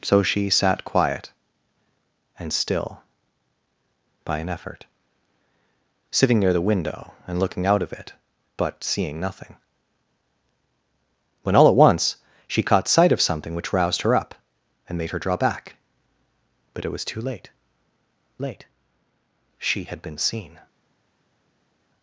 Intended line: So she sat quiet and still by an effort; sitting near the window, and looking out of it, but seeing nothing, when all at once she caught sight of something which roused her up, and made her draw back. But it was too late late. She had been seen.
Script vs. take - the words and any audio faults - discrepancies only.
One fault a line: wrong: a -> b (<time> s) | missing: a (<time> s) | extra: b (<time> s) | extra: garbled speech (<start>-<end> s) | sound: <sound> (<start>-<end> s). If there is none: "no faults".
no faults